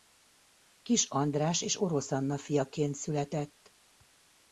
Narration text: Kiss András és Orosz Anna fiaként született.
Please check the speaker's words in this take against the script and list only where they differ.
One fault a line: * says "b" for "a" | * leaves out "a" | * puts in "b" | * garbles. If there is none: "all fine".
all fine